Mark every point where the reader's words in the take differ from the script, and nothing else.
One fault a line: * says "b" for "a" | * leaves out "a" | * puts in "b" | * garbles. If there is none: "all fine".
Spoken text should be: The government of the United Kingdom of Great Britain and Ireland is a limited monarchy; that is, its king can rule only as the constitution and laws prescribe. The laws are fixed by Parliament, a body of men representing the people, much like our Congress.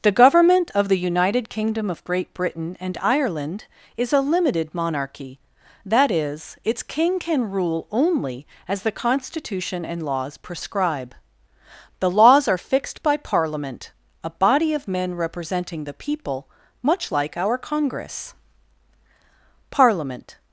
* puts in "Parliament"